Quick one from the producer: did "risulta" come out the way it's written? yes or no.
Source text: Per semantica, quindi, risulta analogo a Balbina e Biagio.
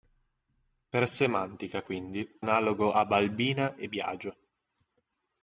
no